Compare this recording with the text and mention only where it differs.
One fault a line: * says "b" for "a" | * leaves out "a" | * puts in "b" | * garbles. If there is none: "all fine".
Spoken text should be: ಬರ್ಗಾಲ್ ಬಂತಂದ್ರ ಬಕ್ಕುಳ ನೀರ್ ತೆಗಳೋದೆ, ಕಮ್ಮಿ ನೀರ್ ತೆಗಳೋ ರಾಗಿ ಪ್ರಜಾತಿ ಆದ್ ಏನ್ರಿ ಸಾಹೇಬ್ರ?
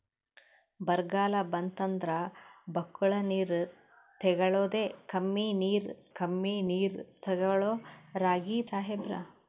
* puts in "ಕಮ್ಮಿ ನೀರ್"
* leaves out "ಪ್ರಜಾತಿ ಆದ್ ಏನ್ರಿ"